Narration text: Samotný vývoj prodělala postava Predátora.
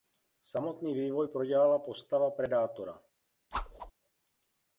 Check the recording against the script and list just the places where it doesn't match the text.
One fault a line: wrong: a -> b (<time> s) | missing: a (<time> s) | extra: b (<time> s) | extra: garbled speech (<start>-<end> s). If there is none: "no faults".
no faults